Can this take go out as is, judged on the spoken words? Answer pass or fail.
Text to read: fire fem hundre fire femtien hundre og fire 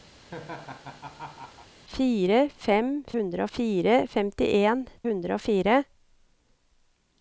pass